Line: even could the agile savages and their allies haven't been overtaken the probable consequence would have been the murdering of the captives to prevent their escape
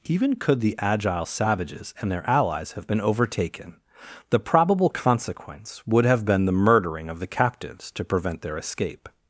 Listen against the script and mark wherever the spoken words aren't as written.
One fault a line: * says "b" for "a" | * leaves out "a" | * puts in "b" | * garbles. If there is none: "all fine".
* says "have" for "haven't"